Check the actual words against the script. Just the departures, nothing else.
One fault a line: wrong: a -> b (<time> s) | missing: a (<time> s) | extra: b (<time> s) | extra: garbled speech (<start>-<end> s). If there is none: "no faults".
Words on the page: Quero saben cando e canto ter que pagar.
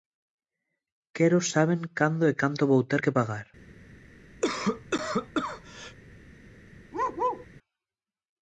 extra: vou (2.7 s)